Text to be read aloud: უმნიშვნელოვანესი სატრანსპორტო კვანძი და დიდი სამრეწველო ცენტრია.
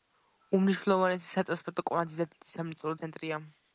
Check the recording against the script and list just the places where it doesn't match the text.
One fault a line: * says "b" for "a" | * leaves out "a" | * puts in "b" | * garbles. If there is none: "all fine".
all fine